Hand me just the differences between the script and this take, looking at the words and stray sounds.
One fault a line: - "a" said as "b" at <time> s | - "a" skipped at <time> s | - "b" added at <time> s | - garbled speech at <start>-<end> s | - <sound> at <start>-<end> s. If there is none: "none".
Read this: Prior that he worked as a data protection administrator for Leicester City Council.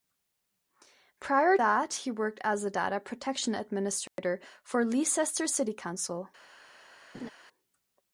- dropout at 4.1-4.2 s
- laugh at 7.1-7.3 s